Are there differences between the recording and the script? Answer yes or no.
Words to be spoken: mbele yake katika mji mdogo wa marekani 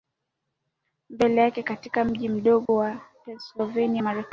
yes